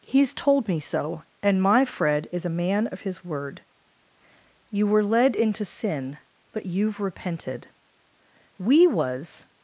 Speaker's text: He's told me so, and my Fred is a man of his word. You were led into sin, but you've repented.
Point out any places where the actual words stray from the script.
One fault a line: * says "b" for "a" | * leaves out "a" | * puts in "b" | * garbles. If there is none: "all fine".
* puts in "We was"